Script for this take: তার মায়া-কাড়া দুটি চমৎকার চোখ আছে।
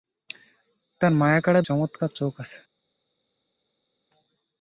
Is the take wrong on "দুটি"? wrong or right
wrong